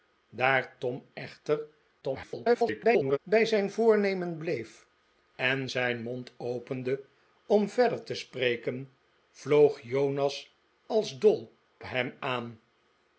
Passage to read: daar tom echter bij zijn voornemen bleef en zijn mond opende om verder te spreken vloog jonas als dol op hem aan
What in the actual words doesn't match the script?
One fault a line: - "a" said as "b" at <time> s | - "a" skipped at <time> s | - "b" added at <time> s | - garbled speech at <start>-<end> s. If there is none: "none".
- garbled speech at 2.0-3.2 s
- "op" skipped at 11.5 s